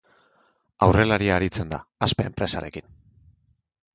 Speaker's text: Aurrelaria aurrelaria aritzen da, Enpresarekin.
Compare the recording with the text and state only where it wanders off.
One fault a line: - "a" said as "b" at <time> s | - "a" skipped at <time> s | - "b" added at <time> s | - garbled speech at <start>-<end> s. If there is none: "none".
- "aurrelaria" skipped at 1.4 s
- "Aspe" added at 2.1 s